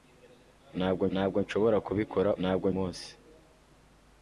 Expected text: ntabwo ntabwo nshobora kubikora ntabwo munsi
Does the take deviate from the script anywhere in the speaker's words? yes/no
no